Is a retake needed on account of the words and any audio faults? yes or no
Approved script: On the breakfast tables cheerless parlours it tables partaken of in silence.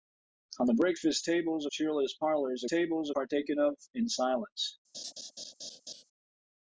yes